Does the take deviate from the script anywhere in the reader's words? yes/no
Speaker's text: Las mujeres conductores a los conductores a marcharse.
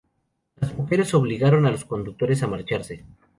yes